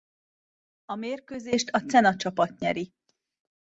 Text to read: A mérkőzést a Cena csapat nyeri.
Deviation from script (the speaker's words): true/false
false